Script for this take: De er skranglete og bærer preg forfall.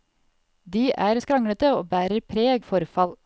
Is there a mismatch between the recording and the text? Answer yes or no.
no